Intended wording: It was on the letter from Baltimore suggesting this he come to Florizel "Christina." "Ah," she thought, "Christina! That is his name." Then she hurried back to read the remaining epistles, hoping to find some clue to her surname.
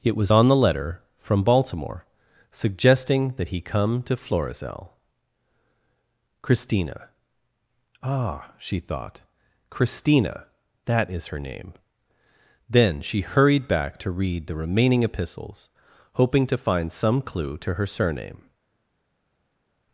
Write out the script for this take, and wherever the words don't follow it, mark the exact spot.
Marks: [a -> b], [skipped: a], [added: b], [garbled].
It was on the letter from Baltimore suggesting [this -> that] he come to Florizel "Christina." "Ah," she thought, "Christina! That is [his -> her] name." Then she hurried back to read the remaining epistles, hoping to find some clue to her surname.